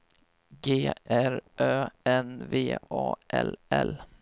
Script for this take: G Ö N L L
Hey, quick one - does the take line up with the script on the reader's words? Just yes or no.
no